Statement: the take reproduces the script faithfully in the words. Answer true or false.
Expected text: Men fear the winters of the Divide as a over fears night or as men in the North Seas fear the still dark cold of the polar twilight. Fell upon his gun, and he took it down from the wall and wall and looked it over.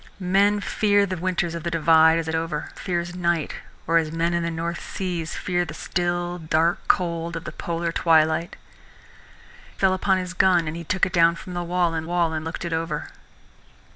true